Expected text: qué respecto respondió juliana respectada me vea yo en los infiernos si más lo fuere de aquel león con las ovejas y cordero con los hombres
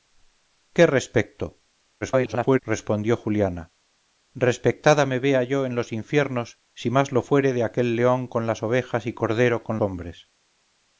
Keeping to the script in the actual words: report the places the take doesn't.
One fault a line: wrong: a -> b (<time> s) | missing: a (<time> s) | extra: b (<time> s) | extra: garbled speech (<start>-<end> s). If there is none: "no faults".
extra: garbled speech (2.0-2.6 s)
missing: los (9.8 s)